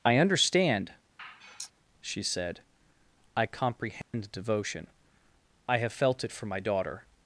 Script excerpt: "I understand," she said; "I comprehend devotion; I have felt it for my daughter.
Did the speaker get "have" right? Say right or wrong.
right